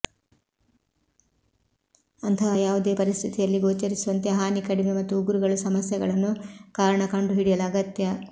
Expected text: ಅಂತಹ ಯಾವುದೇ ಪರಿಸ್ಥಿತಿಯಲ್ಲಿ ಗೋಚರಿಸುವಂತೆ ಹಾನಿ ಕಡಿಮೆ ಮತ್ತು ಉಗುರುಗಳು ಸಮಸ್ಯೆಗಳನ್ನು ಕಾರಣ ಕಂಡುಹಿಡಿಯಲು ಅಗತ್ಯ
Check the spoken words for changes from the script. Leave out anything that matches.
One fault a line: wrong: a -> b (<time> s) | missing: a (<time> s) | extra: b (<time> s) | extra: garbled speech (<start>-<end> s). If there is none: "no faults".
no faults